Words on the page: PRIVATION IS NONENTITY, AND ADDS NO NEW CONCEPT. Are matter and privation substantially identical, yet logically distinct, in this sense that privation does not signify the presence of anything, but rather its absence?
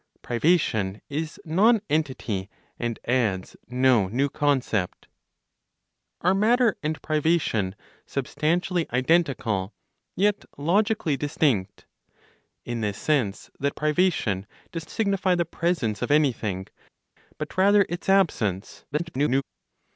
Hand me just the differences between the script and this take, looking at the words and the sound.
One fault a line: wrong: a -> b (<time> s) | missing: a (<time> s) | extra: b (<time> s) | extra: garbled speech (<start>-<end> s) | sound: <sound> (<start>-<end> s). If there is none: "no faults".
missing: not (14.9 s)
extra: garbled speech (18.9-19.4 s)